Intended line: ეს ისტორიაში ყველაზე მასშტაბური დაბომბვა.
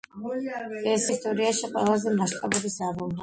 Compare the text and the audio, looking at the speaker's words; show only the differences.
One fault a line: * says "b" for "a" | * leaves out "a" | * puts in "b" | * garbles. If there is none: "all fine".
all fine